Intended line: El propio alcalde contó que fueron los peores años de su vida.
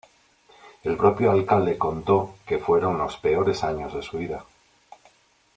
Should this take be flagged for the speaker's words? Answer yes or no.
no